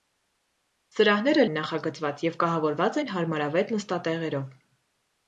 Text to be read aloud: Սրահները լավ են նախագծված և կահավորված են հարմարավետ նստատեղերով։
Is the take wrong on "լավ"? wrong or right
wrong